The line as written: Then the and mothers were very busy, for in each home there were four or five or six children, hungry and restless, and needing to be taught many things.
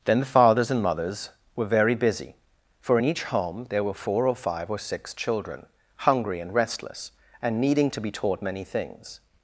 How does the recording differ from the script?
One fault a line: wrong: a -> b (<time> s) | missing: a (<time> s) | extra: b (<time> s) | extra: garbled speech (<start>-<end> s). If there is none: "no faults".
extra: fathers (0.2 s)